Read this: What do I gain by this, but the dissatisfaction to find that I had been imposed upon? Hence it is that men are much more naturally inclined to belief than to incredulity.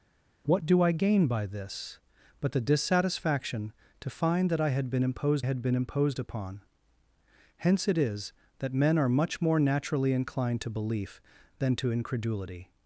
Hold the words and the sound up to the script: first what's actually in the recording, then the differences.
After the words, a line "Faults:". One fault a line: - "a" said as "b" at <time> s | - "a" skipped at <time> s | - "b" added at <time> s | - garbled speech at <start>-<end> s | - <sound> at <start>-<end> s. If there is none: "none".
What do I gain by this, but the dissatisfaction to find that I had been imposed had been imposed upon? Hence it is that men are much more naturally inclined to belief than to incredulity.
Faults:
- "had been imposed" added at 5.4 s